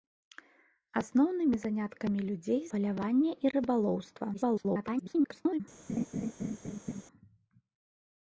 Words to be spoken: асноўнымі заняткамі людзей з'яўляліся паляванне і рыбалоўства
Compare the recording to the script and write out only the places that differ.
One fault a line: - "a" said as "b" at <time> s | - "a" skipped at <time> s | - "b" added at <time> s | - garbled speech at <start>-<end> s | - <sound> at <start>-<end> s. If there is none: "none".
- "з'яўляліся" skipped at 2.6 s
- garbled speech at 4.3-5.6 s
- laugh at 5.9-7.0 s